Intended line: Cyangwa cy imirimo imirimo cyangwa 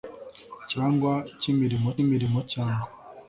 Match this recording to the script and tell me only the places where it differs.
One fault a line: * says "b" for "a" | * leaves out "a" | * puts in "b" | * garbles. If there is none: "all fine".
all fine